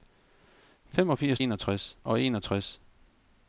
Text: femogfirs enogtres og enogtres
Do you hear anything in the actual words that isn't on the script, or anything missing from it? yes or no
no